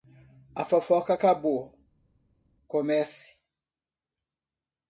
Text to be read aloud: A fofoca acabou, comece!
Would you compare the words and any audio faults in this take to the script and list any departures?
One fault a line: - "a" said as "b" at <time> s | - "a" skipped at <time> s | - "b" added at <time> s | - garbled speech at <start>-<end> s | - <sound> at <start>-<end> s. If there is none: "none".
none